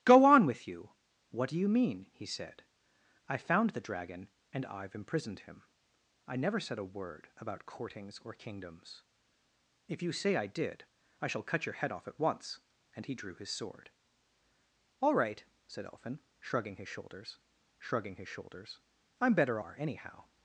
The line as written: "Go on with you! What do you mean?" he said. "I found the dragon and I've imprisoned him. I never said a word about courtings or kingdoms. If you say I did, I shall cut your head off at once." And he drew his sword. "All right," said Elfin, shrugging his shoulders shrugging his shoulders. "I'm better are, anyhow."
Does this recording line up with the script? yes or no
yes